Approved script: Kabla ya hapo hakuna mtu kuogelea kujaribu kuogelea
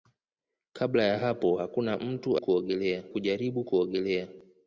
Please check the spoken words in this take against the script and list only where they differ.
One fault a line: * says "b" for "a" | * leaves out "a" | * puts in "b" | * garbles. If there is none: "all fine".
all fine